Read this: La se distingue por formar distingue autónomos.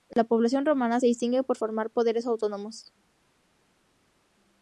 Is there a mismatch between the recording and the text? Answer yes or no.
yes